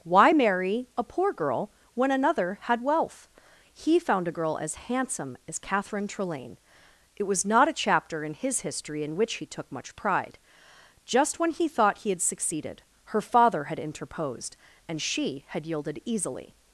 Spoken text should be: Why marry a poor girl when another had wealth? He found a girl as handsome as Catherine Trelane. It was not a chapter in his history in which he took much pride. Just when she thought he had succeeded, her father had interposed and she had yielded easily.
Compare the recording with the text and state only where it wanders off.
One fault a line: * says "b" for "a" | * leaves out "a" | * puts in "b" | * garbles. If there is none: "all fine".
* says "he" for "she"